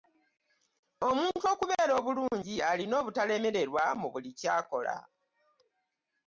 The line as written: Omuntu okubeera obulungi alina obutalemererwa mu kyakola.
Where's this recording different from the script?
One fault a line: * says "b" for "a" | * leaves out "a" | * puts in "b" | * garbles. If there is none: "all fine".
* puts in "buli"